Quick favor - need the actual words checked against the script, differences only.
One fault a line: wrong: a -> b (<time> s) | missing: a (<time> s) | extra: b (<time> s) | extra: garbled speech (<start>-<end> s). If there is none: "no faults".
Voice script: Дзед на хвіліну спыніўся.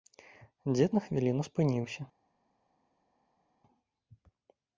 no faults